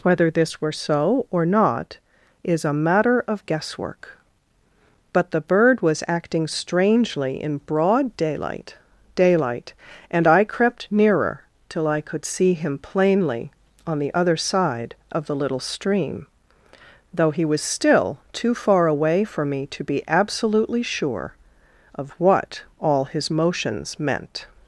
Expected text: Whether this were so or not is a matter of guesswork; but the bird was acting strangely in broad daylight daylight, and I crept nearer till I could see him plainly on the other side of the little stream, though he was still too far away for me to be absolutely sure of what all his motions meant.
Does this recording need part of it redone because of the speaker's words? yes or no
no